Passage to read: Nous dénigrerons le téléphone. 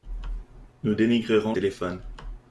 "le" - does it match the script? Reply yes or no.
no